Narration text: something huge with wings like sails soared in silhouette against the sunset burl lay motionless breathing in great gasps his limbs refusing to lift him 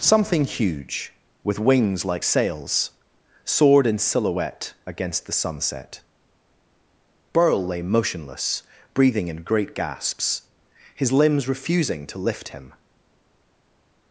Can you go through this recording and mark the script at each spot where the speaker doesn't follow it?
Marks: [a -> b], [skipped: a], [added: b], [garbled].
something huge with wings like sails soared in silhouette against the sunset burl lay motionless breathing in great gasps his limbs refusing to lift him